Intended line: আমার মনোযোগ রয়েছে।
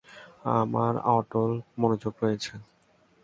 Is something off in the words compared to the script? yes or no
yes